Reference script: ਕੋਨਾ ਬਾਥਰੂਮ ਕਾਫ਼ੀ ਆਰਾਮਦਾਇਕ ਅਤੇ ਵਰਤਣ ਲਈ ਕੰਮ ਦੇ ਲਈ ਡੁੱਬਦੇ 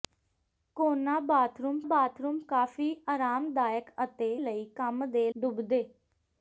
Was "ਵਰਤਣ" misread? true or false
true